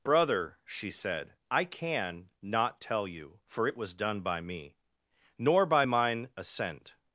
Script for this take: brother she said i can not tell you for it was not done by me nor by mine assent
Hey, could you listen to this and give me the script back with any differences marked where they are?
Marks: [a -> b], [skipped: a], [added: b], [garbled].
brother she said i can not tell you for it was [skipped: not] done by me nor by mine assent